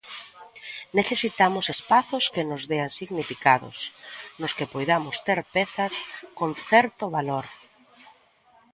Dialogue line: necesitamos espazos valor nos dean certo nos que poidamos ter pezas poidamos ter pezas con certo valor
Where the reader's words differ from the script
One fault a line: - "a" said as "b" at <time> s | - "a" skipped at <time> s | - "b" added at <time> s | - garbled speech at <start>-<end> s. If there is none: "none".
- "valor" said as "que" at 2.3 s
- "certo" said as "significados" at 3.0 s
- "poidamos ter pezas" skipped at 5.9 s